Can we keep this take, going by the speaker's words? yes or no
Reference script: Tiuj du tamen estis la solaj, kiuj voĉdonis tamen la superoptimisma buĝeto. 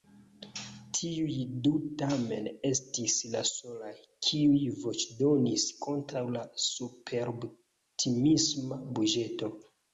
no